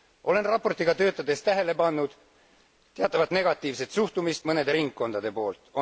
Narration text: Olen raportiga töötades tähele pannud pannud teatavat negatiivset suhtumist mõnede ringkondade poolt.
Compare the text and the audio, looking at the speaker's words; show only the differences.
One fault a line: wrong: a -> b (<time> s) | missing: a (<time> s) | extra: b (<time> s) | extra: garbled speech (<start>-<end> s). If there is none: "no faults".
missing: pannud (2.1 s)